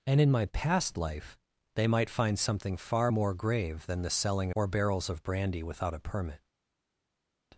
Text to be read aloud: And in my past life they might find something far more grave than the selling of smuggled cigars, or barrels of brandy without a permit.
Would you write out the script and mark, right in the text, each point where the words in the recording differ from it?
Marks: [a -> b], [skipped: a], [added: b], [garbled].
And in my past life they might find something far more grave than the selling [skipped: of smuggled cigars,] or barrels of brandy without a permit.